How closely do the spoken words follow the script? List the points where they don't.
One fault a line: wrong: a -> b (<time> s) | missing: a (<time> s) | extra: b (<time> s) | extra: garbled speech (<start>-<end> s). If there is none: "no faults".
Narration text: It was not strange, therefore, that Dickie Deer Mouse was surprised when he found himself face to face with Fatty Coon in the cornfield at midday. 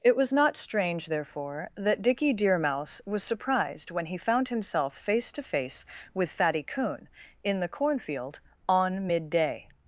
wrong: at -> on (8.7 s)